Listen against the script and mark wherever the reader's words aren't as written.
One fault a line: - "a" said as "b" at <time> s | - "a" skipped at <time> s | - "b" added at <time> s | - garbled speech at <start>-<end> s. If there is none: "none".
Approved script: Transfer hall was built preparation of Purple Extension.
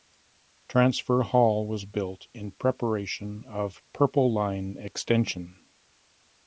- "in" added at 2.3 s
- "Line" added at 4.3 s